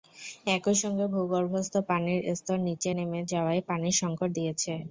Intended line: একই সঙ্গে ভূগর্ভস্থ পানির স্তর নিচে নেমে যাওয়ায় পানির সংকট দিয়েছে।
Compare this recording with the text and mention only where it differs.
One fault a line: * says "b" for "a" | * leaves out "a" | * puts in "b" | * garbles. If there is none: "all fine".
all fine